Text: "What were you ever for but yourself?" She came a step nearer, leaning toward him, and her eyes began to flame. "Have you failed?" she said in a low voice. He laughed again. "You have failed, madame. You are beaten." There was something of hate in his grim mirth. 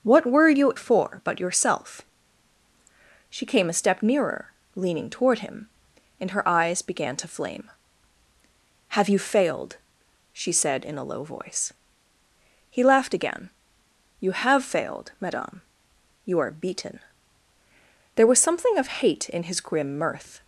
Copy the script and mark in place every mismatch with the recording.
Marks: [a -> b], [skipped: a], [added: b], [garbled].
"What were you [skipped: ever] for but yourself?" She came a step nearer, leaning toward him, and her eyes began to flame. "Have you failed?" she said in a low voice. He laughed again. "You have failed, madame. You are beaten." There was something of hate in his grim mirth.